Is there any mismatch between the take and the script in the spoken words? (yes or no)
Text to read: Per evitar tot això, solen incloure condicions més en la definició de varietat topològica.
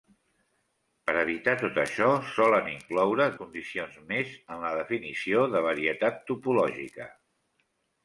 no